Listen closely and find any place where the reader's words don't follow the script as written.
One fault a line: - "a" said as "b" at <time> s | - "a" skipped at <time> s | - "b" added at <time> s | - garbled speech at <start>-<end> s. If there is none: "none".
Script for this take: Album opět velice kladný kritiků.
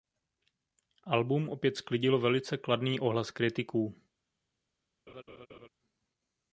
- "sklidilo" added at 1.8 s
- "ohlas" added at 3.0 s